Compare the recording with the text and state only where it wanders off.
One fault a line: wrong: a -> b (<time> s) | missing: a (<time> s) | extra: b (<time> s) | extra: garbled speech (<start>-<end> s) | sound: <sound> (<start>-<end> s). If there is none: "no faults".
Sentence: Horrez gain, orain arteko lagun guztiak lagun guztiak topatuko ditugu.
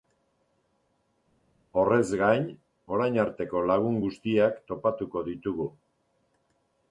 missing: lagun guztiak (4.6 s)